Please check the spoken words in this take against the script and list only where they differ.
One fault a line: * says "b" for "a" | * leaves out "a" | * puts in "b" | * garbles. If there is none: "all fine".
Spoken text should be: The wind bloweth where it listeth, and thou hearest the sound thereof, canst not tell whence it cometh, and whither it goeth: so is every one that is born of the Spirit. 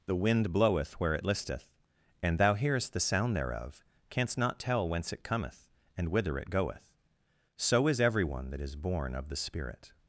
all fine